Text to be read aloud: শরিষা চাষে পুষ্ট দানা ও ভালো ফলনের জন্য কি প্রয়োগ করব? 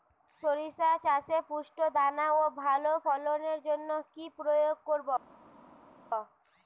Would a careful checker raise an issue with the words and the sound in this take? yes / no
no